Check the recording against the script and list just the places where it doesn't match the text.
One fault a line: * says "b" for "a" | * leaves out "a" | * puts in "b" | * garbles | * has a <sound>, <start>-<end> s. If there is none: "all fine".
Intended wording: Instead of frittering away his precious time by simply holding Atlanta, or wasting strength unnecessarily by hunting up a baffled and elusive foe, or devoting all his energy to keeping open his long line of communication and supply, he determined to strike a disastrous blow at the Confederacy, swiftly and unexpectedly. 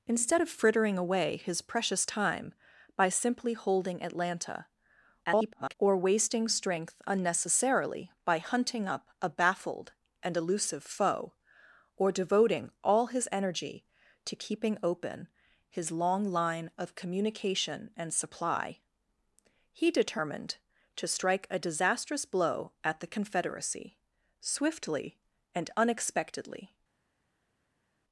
* garbles